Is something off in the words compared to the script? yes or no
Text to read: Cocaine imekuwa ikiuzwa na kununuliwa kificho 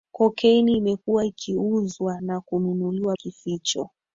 no